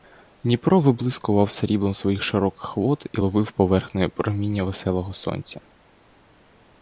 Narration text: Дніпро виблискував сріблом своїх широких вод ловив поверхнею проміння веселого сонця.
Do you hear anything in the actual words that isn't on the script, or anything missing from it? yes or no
yes